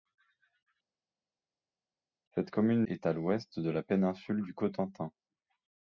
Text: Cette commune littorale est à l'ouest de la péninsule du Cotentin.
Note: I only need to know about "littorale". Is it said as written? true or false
false